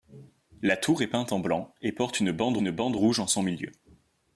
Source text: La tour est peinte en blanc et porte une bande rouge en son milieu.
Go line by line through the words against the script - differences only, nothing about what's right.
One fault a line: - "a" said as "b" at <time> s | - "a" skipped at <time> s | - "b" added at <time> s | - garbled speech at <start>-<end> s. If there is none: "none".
- "une bande" added at 2.6 s